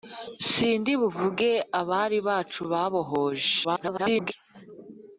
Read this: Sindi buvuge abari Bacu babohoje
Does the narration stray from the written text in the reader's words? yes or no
yes